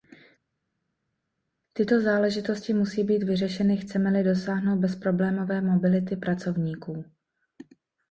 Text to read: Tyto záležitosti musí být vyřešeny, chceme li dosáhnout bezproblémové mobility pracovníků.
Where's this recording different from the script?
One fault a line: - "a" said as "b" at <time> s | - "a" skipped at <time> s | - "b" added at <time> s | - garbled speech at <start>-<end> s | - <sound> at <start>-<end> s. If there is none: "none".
none